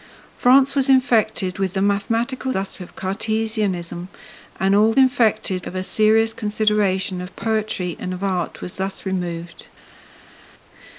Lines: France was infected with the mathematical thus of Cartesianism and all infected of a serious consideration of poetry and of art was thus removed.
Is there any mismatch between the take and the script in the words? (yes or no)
no